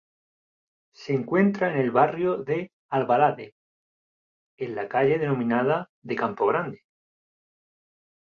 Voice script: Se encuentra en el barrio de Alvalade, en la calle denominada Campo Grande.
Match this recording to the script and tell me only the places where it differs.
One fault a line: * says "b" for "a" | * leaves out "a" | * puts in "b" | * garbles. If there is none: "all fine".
* puts in "de"